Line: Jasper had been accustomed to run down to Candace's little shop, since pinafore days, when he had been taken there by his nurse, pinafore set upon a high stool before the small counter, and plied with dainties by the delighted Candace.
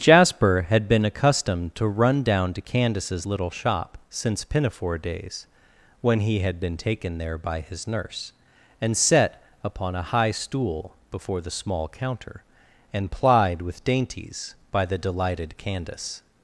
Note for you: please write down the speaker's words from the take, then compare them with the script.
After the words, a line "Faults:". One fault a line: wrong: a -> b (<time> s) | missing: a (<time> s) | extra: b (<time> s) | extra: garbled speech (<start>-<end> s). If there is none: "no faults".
Jasper had been accustomed to run down to Candace's little shop, since pinafore days, when he had been taken there by his nurse, and set upon a high stool before the small counter, and plied with dainties by the delighted Candace.
Faults:
wrong: pinafore -> and (8.8 s)